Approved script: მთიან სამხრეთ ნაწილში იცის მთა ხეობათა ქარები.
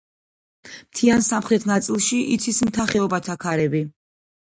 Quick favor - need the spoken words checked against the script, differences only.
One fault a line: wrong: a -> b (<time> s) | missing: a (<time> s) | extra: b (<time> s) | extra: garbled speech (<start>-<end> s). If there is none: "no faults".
no faults